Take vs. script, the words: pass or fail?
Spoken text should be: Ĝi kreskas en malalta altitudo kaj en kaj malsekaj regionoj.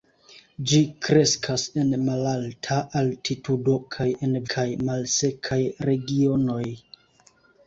pass